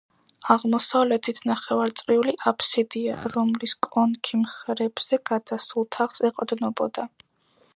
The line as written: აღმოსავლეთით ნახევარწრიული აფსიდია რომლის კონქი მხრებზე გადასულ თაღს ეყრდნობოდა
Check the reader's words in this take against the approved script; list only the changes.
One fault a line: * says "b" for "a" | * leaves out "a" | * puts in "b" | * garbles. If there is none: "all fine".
all fine